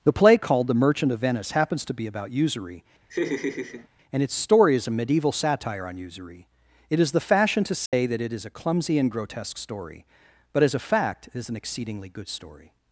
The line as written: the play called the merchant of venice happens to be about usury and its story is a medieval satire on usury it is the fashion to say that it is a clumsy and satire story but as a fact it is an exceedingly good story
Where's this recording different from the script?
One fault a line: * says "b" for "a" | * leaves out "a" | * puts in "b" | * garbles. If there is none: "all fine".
* says "grotesque" for "satire"